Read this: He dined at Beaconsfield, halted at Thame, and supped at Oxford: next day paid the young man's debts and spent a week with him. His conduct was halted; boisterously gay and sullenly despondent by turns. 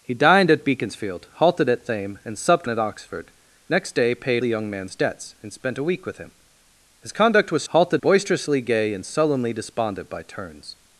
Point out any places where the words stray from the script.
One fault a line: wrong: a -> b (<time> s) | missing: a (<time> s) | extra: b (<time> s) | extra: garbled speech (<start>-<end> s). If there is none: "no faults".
no faults